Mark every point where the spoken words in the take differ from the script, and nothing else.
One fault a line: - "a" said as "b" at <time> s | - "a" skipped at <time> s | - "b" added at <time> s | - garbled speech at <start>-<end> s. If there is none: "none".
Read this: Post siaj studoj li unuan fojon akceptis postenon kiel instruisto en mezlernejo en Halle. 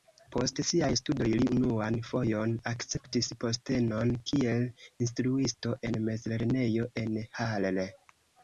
none